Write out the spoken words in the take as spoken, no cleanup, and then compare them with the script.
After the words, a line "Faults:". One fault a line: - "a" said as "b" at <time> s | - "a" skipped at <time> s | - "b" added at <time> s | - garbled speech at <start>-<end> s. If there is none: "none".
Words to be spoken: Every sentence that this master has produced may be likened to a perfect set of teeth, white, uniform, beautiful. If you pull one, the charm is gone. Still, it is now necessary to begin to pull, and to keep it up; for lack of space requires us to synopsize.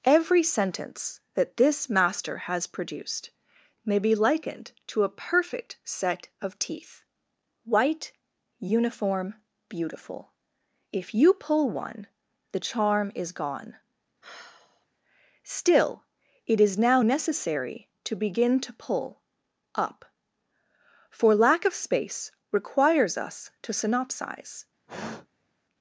Every sentence that this master has produced may be likened to a perfect set of teeth, white, uniform, beautiful. If you pull one, the charm is gone. Still, it is now necessary to begin to pull, up; for lack of space requires us to synopsize.
Faults:
- "and to keep it" skipped at 19.2 s